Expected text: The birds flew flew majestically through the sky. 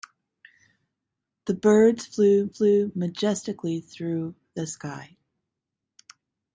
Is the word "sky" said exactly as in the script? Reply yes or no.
yes